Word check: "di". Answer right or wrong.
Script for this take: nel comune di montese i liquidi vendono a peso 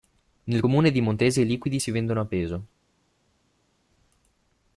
right